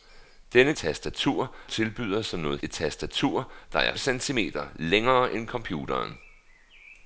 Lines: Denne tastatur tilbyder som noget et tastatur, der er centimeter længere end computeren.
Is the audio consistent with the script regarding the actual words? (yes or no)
yes